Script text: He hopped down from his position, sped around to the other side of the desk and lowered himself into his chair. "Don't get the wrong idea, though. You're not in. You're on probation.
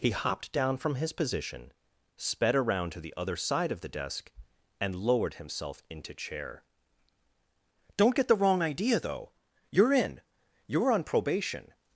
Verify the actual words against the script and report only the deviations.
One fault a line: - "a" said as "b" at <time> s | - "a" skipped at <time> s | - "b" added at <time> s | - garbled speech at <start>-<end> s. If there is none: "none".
- "his" skipped at 6.2 s
- "not" skipped at 9.9 s